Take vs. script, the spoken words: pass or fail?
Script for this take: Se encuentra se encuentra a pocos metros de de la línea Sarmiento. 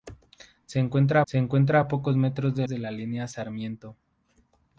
pass